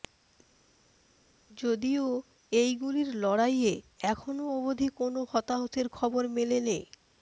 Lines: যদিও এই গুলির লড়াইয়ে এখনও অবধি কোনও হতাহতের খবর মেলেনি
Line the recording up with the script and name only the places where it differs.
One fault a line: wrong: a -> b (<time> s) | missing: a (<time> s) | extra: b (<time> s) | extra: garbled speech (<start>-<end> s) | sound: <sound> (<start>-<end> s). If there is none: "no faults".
no faults